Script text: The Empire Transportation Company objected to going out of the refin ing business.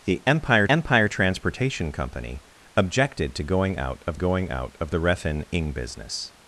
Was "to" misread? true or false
false